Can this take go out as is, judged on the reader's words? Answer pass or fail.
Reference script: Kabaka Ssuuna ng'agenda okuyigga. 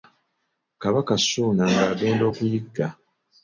pass